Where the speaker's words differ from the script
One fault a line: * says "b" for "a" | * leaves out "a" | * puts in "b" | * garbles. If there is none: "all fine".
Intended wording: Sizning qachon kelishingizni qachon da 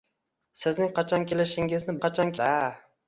all fine